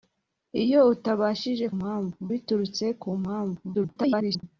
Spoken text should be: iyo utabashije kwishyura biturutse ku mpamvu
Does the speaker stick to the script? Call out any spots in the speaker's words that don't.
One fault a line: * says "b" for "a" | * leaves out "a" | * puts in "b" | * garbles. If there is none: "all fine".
* says "mpamvu" for "kwishyura"
* garbles